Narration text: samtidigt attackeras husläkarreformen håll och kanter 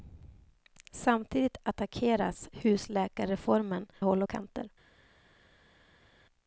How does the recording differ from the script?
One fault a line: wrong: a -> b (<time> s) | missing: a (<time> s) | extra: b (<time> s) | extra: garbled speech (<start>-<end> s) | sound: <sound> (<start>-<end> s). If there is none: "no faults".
no faults